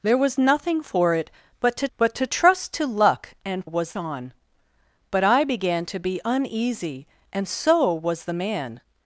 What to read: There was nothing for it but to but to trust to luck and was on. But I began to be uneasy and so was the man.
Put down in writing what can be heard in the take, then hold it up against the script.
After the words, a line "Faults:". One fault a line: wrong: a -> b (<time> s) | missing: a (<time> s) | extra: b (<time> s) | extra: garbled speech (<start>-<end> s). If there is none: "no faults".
There was nothing for it but to but to trust to luck and was on. But I began to be uneasy and so was the man.
Faults:
no faults